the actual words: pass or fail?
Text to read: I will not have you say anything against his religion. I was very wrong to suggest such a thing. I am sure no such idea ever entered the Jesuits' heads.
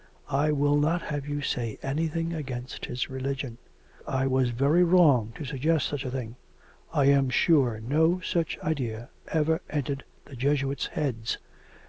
pass